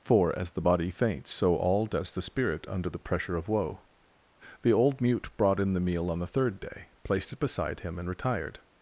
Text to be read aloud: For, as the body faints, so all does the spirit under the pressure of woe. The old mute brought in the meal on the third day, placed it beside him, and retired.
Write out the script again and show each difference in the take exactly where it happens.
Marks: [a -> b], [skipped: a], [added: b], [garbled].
For, as the body faints, so all does the spirit under the pressure of woe. The old mute brought in the meal on the third day, placed it beside him, and retired.